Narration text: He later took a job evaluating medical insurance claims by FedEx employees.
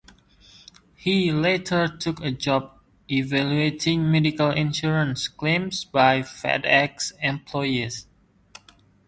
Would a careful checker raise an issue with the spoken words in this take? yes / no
no